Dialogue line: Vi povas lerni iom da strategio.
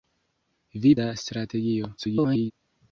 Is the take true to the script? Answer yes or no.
no